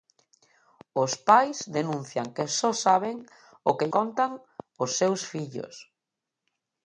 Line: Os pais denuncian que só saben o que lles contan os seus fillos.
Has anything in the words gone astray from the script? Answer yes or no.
yes